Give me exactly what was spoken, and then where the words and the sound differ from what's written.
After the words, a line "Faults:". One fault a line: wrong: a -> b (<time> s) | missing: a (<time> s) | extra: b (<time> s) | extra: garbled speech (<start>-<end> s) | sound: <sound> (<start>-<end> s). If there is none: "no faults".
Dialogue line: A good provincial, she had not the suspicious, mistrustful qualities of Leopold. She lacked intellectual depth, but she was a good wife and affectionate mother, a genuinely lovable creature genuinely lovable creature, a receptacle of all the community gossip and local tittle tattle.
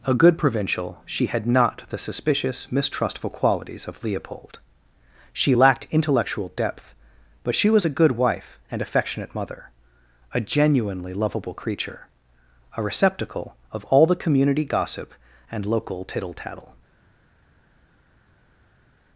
A good provincial, she had not the suspicious, mistrustful qualities of Leopold. She lacked intellectual depth, but she was a good wife and affectionate mother, a genuinely lovable creature, a receptacle of all the community gossip and local tittle tattle.
Faults:
missing: genuinely lovable creature (12.1 s)